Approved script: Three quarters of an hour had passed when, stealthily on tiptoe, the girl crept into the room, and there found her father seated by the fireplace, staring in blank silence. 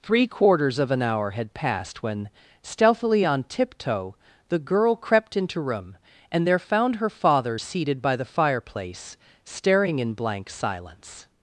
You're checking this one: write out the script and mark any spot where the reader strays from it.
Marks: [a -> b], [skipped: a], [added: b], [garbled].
Three quarters of an hour had passed when, stealthily on tiptoe, the girl crept into [skipped: the] room, and there found her father seated by the fireplace, staring in blank silence.